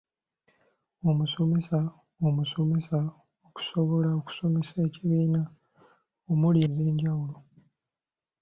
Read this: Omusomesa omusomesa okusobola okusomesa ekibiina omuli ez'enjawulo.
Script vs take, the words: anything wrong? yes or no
no